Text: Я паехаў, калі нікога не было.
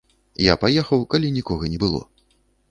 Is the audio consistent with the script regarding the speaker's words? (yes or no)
yes